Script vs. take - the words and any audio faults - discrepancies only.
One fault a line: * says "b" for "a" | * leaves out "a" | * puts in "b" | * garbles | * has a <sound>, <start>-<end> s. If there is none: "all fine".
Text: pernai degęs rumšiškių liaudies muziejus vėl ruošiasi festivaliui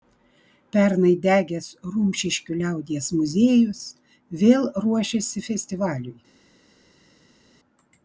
all fine